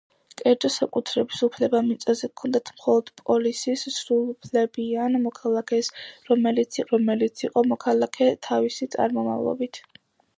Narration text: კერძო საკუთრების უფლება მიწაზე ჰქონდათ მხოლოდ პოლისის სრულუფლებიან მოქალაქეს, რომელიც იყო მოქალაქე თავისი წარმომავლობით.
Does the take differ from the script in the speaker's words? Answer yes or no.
yes